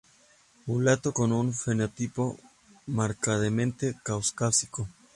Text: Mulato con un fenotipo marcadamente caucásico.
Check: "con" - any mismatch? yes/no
no